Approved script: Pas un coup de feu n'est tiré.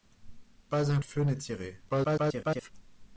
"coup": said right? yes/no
no